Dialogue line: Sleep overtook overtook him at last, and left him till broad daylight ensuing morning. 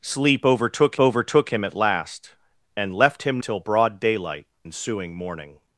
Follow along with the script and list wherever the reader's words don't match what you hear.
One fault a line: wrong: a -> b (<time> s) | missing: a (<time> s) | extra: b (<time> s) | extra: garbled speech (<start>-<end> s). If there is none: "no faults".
no faults